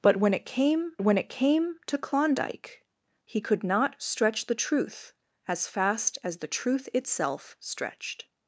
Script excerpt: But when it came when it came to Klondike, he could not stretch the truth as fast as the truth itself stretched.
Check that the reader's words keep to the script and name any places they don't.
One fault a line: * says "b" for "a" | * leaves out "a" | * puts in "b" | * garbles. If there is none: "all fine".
all fine